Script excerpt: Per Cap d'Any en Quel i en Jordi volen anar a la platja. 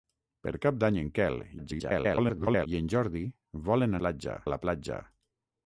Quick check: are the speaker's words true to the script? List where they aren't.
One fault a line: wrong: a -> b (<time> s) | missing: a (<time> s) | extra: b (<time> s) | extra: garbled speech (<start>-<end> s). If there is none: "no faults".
extra: garbled speech (1.6-2.7 s)
wrong: anar -> platja (4.0 s)